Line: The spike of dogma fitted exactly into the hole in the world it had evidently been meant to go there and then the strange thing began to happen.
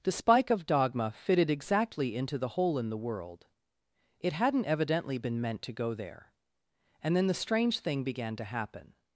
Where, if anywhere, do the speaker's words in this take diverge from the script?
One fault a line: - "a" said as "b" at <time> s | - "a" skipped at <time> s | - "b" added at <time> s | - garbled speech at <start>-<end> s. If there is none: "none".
- "had" said as "hadn't" at 4.3 s